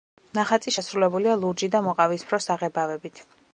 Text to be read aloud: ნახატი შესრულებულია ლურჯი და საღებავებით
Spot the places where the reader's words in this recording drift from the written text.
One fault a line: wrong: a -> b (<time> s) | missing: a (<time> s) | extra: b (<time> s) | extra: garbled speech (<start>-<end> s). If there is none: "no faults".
extra: მოყავისფრო (1.9 s)